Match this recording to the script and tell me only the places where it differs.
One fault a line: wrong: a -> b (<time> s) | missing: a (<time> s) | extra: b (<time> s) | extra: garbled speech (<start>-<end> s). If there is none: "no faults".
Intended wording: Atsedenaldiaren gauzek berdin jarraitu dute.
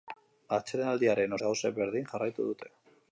no faults